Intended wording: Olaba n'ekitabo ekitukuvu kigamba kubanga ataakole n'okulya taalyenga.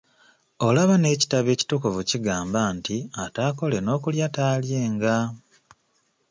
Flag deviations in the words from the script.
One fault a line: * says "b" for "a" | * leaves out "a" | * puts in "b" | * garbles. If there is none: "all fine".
* says "nti" for "kubanga"